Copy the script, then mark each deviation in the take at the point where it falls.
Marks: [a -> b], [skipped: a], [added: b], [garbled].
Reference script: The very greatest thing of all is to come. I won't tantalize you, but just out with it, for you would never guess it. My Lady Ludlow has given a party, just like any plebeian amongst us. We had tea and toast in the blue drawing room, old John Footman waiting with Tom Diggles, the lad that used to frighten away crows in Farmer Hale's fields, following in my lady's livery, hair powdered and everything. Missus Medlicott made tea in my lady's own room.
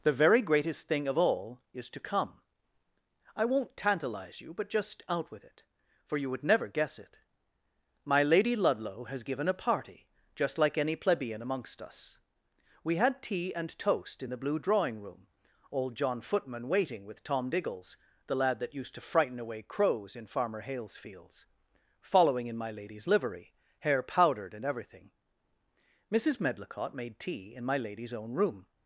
The very greatest thing of all is to come. I won't tantalize you, but just out with it, for you would never guess it. My Lady Ludlow has given a party, just like any plebeian amongst us. We had tea and toast in the blue drawing room, old John Footman waiting with Tom Diggles, the lad that used to frighten away crows in Farmer Hale's fields, following in my lady's livery, hair powdered and everything. Missus Medlicott made tea in my lady's own room.